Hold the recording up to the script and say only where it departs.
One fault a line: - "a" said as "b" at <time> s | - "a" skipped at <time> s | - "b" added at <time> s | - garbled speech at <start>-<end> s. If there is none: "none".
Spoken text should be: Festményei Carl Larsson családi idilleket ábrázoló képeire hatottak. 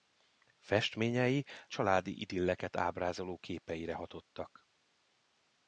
- "Carl Larsson" skipped at 1.5 s